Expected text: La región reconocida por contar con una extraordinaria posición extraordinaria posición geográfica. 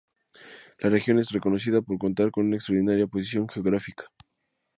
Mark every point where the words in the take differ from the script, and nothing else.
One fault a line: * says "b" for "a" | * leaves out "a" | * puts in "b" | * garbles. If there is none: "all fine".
* puts in "es"
* leaves out "extraordinaria posición"